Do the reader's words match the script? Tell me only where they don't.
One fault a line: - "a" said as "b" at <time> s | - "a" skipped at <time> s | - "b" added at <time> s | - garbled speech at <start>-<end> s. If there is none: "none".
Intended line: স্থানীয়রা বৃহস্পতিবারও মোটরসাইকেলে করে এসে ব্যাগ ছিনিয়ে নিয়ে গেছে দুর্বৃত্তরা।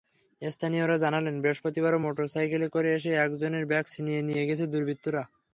- "জানালেন" added at 1.0 s
- "একজনের" added at 3.3 s